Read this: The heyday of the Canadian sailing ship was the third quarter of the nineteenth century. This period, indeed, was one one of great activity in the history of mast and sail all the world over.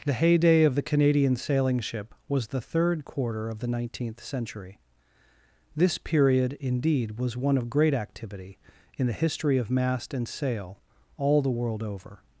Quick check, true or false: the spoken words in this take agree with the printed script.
false